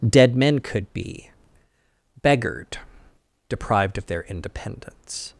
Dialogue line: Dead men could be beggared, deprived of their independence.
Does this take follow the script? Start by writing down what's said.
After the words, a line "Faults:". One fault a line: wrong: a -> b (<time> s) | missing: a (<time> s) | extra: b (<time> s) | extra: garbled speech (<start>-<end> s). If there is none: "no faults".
Dead men could be beggared, deprived of their independence.
Faults:
no faults